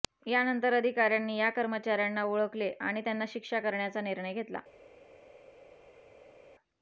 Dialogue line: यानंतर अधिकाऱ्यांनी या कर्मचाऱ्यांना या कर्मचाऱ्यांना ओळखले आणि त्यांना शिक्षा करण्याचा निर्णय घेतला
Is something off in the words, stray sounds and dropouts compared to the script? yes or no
yes